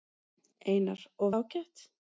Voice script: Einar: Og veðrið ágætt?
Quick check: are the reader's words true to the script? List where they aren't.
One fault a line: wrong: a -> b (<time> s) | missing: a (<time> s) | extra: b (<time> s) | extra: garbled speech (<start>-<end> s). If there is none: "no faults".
missing: veðrið (1.3 s)